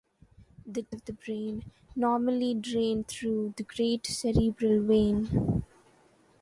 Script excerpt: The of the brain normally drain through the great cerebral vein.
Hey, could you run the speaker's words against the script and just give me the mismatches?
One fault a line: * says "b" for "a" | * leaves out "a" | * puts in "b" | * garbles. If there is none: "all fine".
all fine